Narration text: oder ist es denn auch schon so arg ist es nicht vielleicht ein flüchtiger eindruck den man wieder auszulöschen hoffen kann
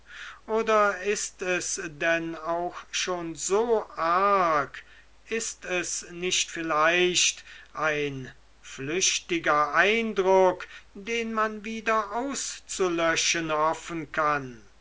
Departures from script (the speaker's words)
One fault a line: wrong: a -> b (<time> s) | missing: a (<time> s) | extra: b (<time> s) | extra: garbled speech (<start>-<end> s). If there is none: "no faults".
no faults